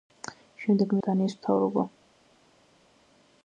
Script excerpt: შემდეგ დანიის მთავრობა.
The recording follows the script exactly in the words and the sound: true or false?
true